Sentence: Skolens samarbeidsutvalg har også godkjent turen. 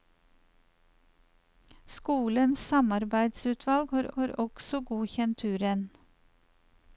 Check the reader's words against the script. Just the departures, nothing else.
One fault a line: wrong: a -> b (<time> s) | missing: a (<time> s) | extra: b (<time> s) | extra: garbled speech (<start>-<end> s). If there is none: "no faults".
extra: har (4.2 s)